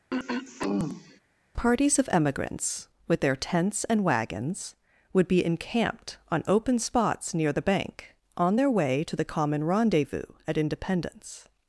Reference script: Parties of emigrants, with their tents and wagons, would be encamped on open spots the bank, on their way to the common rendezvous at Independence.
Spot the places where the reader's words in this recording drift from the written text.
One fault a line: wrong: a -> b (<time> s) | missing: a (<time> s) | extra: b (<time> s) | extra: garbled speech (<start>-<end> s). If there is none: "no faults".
extra: near (7.3 s)